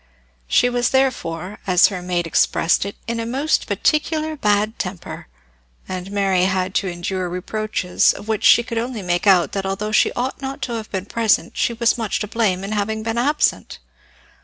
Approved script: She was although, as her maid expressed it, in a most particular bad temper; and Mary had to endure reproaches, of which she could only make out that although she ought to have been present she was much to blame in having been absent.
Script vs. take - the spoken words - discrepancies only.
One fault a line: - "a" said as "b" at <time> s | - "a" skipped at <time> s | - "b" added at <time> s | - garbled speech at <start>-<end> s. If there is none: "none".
- "although" said as "therefore" at 0.9 s
- "not" added at 10.4 s